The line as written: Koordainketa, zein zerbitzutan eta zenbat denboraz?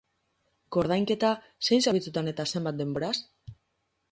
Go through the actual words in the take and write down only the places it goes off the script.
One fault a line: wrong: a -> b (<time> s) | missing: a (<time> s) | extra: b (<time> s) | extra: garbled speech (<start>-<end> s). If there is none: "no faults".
no faults